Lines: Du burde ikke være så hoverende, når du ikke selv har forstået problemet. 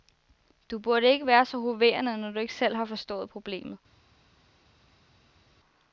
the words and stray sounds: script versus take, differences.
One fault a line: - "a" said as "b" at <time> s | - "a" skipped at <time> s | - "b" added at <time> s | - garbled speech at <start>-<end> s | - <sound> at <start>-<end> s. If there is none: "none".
none